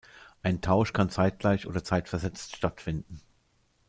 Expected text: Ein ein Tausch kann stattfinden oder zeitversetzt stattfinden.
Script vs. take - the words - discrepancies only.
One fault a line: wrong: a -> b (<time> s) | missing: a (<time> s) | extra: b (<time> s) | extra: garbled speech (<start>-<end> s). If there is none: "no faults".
missing: ein (0.6 s)
wrong: stattfinden -> zeitgleich (1.1 s)